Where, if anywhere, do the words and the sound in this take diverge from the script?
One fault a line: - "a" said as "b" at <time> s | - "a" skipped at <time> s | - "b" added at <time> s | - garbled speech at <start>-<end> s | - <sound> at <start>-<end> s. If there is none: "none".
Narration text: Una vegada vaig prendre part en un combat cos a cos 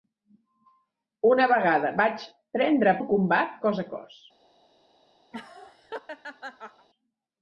- "part en" skipped at 3.0 s
- laugh at 5.3-6.9 s